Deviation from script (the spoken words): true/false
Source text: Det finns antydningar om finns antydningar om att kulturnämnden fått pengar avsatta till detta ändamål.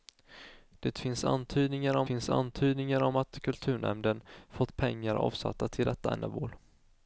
false